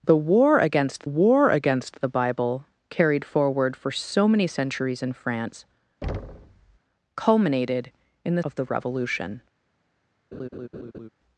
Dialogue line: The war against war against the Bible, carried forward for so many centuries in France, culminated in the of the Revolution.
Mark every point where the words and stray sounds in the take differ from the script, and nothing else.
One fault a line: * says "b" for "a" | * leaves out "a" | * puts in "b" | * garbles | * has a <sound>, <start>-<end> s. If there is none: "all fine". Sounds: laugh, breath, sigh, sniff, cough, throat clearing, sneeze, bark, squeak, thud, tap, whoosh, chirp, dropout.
* has a thud, 6.0-6.8 s
* has a laugh, 10.3-11.1 s